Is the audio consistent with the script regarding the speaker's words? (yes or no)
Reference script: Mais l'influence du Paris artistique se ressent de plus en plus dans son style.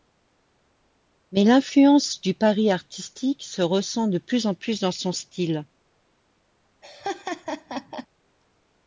yes